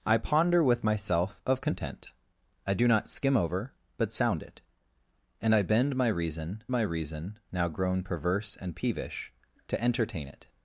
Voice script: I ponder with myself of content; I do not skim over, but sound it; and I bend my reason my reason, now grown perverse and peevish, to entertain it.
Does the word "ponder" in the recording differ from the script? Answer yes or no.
no